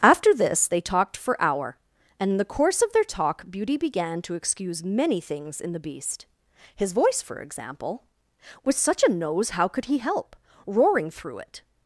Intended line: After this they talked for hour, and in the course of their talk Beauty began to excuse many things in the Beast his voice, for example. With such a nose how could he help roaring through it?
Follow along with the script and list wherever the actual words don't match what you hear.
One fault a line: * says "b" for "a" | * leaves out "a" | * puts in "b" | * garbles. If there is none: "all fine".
all fine